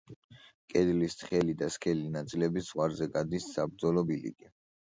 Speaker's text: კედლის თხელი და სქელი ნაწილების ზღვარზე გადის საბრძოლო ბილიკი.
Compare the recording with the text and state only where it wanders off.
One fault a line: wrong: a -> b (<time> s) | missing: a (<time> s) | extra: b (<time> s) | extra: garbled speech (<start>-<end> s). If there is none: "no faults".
no faults